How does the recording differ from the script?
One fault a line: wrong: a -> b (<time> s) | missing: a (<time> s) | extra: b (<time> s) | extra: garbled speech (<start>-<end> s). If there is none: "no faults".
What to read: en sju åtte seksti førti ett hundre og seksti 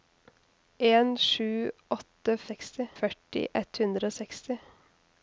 no faults